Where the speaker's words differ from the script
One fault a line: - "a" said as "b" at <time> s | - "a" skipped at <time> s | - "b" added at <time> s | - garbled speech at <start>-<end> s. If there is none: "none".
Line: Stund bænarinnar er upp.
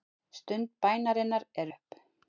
none